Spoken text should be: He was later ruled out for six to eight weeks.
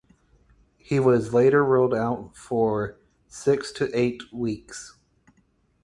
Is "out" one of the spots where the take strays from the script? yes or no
no